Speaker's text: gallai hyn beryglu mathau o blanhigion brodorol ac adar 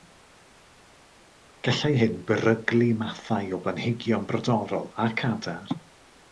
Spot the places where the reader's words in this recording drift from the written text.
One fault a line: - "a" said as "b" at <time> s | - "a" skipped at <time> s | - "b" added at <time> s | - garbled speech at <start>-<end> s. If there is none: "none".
none